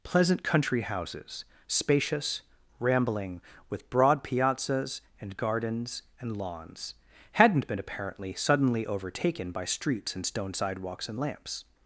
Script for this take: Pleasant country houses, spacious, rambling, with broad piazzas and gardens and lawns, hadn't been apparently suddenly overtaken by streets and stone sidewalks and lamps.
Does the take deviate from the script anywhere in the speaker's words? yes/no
no